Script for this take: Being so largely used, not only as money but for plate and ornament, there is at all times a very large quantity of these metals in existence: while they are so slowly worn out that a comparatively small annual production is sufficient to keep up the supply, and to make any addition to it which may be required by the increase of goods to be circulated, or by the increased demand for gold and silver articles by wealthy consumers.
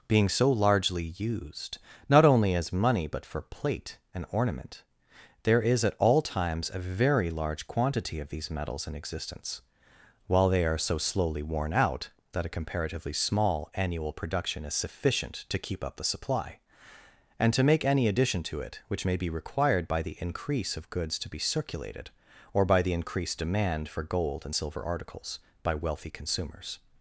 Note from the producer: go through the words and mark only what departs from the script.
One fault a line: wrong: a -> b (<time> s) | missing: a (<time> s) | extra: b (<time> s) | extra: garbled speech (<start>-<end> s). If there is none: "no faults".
no faults